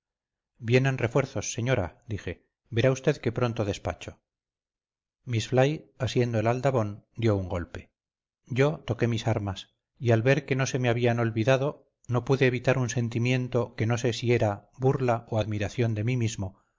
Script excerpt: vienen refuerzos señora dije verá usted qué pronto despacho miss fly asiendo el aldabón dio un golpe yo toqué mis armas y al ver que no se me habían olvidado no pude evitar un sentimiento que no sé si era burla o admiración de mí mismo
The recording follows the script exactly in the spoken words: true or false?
true